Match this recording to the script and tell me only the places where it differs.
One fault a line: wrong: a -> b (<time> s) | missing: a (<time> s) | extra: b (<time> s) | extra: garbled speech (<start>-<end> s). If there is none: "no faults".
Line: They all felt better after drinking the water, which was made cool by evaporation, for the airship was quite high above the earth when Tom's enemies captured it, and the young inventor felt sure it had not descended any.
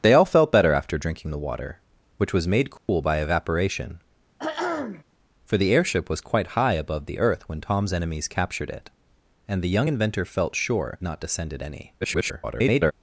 missing: it had (11.0 s)
extra: garbled speech (12.0-12.9 s)